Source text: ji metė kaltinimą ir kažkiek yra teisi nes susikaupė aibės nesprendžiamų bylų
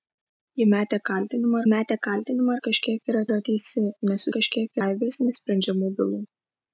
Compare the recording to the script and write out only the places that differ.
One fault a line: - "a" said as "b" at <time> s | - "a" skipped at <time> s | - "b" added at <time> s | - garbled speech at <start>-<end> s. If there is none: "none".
- "metė kaltinimą" added at 1.7 s
- "yra" added at 3.3 s
- "susikaupė" said as "kažkiek" at 4.4 s